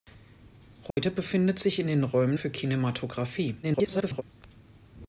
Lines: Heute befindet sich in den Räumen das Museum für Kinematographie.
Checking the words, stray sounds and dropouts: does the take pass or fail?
fail